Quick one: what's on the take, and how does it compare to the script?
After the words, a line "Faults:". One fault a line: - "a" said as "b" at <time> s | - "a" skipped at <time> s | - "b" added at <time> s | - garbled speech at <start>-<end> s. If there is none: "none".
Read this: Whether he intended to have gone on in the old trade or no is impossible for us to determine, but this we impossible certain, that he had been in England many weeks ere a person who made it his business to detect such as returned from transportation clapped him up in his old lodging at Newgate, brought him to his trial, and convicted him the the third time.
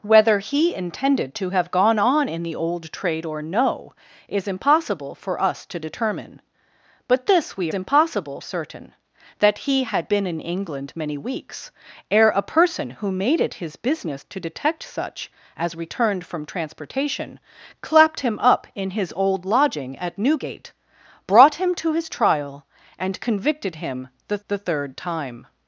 Whether he intended to have gone on in the old trade or no is impossible for us to determine, but this we impossible certain, that he had been in England many weeks ere a person who made it his business to detect such as returned from transportation clapped him up in his old lodging at Newgate, brought him to his trial, and convicted him the the third time.
Faults:
none